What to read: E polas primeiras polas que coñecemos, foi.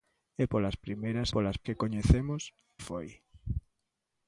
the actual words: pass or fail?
pass